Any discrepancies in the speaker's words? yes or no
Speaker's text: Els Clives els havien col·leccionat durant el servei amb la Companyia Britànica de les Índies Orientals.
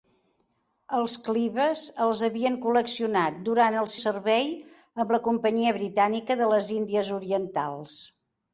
no